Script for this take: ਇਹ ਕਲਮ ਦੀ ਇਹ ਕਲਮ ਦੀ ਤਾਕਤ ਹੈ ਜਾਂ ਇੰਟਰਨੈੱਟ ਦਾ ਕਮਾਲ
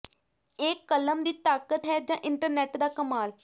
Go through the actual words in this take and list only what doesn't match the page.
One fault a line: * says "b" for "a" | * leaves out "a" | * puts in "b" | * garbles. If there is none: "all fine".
* leaves out "ਇਹ ਕਲਮ ਦੀ"